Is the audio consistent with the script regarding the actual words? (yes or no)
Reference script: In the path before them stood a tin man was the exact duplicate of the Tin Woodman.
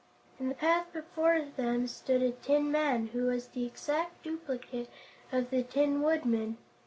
no